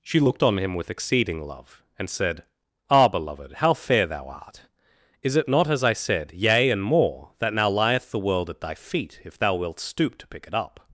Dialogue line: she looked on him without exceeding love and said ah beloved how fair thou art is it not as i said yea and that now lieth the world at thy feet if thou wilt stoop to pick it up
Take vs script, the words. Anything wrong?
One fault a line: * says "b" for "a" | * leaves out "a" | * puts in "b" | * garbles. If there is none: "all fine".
* says "with" for "without"
* puts in "more"